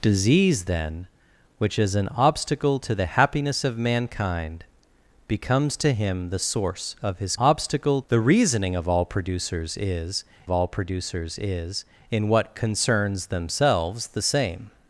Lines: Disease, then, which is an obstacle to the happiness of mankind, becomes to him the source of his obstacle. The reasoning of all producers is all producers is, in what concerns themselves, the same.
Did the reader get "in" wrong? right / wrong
right